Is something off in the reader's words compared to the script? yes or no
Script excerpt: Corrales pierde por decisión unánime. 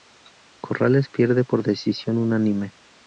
no